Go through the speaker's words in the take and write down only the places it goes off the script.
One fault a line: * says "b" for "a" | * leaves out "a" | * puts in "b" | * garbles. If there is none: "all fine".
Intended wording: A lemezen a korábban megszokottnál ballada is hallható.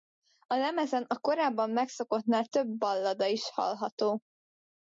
* puts in "több"